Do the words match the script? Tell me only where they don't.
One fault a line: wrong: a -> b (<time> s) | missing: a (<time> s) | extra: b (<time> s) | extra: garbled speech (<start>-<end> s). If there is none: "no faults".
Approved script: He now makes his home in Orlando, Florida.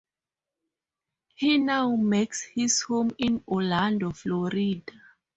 no faults